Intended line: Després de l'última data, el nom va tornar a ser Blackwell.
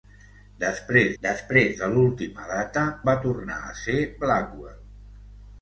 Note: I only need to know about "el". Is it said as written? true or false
false